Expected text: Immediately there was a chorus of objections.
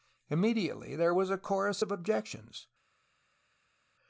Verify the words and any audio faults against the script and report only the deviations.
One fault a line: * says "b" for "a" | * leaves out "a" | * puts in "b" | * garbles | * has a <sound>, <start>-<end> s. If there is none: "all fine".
all fine